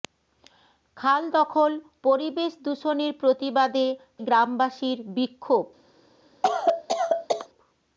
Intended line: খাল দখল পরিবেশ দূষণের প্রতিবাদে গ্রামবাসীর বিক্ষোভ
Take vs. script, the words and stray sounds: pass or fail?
fail